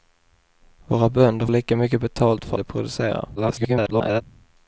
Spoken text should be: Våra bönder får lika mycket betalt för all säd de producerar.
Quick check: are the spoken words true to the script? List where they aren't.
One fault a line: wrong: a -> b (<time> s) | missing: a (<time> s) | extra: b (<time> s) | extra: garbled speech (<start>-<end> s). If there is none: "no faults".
missing: får (1.5 s)
missing: all säd (2.6 s)
extra: garbled speech (3.4-4.2 s)